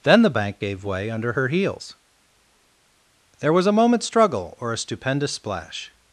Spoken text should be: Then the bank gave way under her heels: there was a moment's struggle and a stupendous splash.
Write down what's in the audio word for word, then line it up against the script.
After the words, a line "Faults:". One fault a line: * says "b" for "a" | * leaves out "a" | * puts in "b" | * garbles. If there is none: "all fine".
Then the bank gave way under her heels: there was a moment's struggle or a stupendous splash.
Faults:
* says "or" for "and"